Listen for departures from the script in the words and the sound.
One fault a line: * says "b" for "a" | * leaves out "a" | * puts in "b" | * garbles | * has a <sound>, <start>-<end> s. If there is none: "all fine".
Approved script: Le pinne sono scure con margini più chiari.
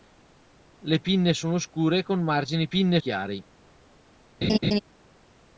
* says "pinne" for "più"
* has a laugh, 4.4-4.8 s